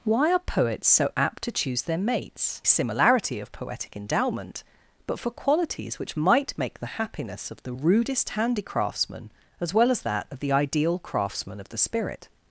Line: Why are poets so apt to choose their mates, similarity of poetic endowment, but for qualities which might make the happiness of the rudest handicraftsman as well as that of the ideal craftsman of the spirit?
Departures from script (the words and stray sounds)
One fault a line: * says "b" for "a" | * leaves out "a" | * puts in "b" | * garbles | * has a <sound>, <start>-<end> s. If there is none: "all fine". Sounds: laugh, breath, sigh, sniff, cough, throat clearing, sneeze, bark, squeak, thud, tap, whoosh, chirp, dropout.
all fine